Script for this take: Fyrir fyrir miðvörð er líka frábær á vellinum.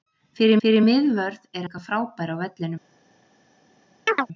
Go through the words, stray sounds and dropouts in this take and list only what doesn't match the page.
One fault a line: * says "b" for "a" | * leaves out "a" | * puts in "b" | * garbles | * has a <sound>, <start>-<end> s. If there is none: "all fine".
* has a chirp, 4.1-4.3 s